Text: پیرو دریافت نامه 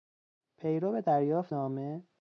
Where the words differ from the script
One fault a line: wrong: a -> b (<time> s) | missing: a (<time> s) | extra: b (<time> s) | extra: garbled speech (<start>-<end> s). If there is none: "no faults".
no faults